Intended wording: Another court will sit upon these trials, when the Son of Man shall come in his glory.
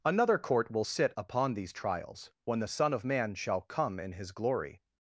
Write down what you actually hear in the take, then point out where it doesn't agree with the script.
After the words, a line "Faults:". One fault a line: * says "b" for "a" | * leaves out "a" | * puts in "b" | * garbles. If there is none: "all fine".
Another court will sit upon these trials, when the Son of Man shall come in his glory.
Faults:
all fine